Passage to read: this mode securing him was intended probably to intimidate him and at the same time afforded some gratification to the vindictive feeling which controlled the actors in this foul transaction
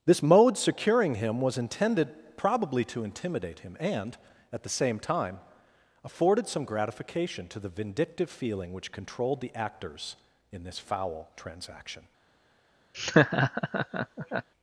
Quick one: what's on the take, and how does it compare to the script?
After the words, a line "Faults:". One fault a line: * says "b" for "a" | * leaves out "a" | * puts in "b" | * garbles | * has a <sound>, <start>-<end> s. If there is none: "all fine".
this mode securing him was intended probably to intimidate him and at the same time afforded some gratification to the vindictive feeling which controlled the actors in this foul transaction
Faults:
* has a laugh, 12.9-14.5 s